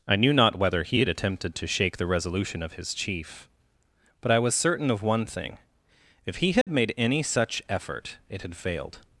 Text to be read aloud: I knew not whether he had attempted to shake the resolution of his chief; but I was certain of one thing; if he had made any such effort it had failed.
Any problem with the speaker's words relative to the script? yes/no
no